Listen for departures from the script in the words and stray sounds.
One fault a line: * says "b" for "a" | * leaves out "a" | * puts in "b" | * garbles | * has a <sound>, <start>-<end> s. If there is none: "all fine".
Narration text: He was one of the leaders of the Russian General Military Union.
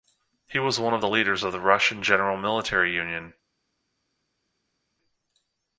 all fine